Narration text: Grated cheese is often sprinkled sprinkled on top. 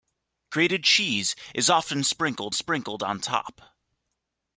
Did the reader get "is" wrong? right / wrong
right